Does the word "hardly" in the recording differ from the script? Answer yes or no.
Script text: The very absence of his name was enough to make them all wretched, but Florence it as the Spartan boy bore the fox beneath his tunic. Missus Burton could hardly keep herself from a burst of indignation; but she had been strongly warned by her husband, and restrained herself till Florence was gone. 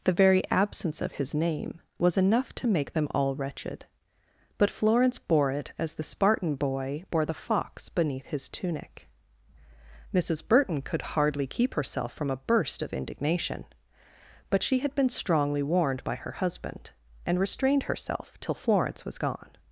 no